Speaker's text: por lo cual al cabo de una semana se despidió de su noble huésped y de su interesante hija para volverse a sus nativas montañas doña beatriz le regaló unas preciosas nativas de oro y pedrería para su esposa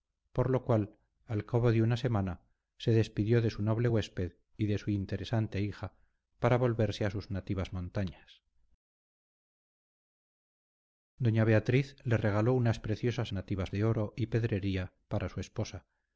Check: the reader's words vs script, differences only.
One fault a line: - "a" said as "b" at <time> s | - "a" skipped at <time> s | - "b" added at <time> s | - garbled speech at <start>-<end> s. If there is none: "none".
none